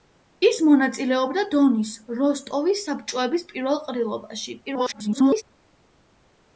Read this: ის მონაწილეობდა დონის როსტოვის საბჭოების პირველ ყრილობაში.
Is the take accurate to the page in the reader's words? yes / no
no